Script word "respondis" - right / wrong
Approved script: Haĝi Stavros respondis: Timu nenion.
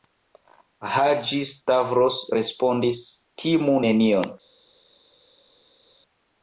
right